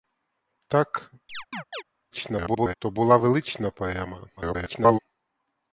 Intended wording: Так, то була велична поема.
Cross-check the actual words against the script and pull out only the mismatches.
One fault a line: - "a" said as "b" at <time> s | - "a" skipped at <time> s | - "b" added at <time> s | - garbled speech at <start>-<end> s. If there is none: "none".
- garbled speech at 2.1-2.8 s
- garbled speech at 4.4-5.0 s